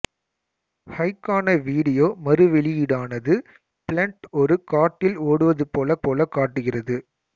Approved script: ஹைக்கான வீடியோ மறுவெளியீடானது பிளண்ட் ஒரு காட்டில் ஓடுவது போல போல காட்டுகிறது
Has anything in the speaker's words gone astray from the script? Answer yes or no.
no